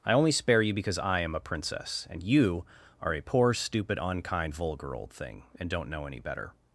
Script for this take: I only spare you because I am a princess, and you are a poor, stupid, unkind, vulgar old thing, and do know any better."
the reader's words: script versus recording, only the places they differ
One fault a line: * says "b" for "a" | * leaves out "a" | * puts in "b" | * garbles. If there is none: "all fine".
* says "don't" for "do"